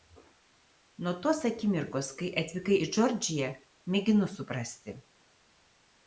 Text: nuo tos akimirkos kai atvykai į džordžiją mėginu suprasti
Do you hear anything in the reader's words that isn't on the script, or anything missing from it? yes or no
no